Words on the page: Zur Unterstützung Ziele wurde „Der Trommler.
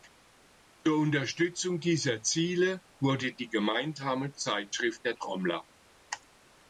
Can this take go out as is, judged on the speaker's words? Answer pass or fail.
fail